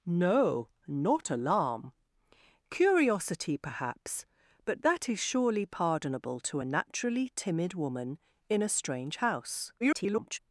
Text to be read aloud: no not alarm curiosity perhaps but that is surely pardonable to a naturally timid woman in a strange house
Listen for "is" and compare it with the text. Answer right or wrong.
right